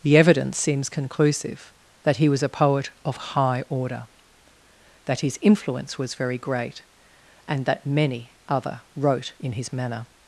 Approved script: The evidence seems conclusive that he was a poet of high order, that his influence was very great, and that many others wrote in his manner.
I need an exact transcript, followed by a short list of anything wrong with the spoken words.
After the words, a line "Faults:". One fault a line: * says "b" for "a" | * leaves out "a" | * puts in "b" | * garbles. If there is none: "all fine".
The evidence seems conclusive that he was a poet of high order, that his influence was very great, and that many other wrote in his manner.
Faults:
* says "other" for "others"